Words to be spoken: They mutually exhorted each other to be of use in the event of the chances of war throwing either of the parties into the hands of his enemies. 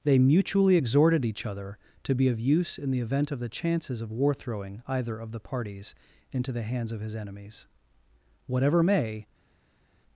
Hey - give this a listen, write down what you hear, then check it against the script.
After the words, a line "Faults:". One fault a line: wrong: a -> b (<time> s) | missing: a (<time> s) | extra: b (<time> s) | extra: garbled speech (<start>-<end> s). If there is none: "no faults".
They mutually exhorted each other to be of use in the event of the chances of war throwing either of the parties into the hands of his enemies. Whatever may
Faults:
extra: Whatever may (8.5 s)